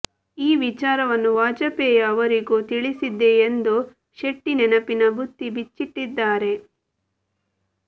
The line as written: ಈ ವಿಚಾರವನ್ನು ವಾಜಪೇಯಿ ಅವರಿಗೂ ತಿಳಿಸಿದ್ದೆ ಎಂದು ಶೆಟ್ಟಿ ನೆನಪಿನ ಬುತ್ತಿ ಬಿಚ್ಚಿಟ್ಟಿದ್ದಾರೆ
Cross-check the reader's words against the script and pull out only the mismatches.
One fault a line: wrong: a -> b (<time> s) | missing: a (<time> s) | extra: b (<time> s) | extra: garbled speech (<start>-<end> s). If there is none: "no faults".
no faults